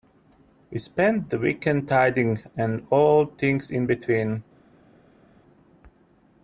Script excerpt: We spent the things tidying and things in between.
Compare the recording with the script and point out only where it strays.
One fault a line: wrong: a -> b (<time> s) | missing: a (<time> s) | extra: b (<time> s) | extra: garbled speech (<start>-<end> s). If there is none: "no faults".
wrong: things -> weekend (1.4 s)
extra: all (2.9 s)